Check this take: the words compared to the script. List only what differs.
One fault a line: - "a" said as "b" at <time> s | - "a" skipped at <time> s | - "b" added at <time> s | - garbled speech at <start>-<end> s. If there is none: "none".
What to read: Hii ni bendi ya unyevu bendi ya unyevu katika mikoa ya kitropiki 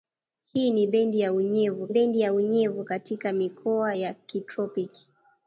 none